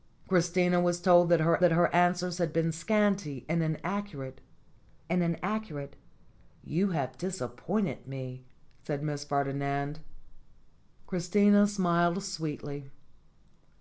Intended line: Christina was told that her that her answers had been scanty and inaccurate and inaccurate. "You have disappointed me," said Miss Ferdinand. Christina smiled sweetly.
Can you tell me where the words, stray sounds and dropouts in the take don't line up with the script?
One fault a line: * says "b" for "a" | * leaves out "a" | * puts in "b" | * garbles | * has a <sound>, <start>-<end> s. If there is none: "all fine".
all fine